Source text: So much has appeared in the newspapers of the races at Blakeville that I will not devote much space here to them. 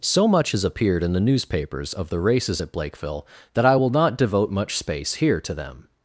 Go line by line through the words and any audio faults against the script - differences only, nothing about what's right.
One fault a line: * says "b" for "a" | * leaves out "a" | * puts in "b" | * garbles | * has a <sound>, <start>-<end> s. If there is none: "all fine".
all fine